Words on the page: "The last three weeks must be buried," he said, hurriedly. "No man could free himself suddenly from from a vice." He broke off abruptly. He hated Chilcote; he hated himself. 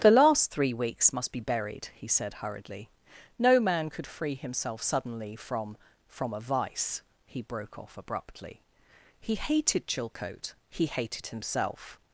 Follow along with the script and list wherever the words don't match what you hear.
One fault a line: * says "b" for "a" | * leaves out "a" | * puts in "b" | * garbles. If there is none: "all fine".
all fine